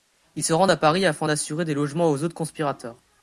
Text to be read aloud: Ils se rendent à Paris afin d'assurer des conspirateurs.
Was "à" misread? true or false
false